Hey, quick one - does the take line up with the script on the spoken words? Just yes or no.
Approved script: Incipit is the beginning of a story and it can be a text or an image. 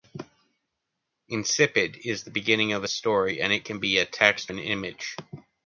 no